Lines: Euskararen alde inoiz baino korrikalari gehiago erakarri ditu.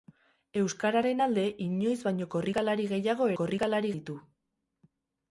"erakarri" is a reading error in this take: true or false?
true